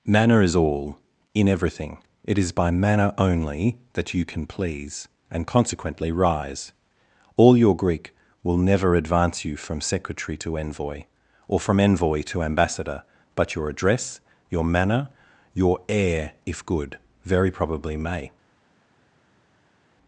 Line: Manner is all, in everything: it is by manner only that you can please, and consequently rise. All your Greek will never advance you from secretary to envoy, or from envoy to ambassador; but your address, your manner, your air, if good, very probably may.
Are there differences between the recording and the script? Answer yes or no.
no